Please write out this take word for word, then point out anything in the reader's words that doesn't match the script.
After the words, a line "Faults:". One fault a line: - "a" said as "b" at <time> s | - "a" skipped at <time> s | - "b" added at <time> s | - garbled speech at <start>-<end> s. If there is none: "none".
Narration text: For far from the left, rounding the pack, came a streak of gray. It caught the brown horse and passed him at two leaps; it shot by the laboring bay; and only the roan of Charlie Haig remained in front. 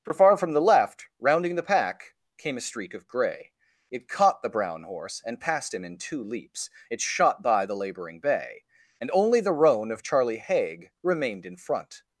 For far from the left, rounding the pack, came a streak of gray. It caught the brown horse and passed him in two leaps; it shot by the laboring bay; and only the roan of Charlie Haig remained in front.
Faults:
- "at" said as "in" at 5.8 s